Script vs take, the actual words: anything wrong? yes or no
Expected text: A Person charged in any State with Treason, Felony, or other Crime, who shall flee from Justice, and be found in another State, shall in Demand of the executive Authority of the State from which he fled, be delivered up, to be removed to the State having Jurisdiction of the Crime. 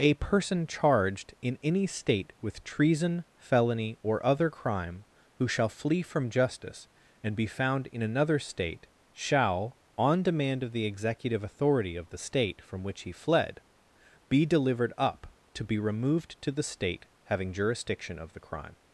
yes